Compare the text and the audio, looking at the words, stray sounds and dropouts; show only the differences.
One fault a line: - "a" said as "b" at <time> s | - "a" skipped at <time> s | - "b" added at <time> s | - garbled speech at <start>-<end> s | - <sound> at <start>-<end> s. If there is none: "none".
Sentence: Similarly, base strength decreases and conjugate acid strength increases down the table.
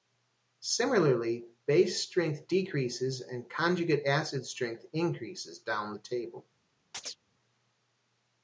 - chirp at 6.9-7.2 s